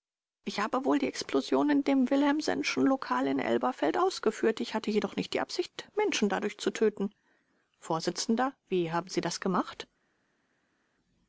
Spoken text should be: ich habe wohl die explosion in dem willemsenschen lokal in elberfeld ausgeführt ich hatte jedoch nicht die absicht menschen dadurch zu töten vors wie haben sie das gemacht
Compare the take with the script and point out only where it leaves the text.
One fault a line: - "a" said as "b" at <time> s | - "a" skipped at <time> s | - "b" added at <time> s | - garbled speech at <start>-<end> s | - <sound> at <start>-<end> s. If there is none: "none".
none